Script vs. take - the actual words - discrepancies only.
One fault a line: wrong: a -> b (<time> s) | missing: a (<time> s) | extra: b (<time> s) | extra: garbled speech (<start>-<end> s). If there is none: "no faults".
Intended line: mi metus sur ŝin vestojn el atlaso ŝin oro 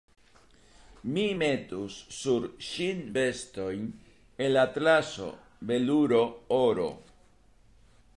wrong: ŝin -> veluro (5.7 s)